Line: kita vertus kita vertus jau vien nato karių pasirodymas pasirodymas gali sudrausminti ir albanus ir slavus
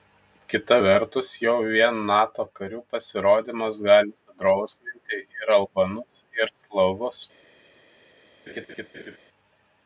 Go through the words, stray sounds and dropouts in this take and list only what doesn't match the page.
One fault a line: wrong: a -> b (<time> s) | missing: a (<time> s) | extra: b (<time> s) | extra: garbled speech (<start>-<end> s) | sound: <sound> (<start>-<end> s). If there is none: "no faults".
missing: kita vertus (1.3 s)
missing: pasirodymas (3.8 s)
sound: laugh (8.5-9.2 s)